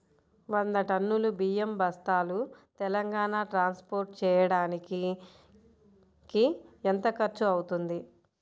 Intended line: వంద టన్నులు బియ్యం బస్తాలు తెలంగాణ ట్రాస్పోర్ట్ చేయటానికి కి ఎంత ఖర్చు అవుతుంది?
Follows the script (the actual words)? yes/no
yes